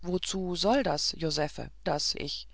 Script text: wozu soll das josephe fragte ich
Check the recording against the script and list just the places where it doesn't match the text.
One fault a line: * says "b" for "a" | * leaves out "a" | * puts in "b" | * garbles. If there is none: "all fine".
* says "das" for "fragte"